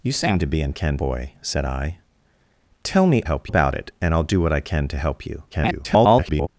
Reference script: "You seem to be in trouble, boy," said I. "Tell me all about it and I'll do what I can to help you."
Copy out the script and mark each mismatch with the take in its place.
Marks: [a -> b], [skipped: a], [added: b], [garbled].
"You seem to be in [trouble, -> can] boy," said I. "Tell me [all -> help] about it and I'll do what I can to help you." [garbled]